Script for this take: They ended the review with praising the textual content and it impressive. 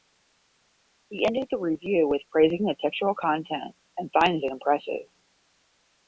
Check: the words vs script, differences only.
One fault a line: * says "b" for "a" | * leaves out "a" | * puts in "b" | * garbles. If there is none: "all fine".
* says "He" for "They"
* puts in "finds"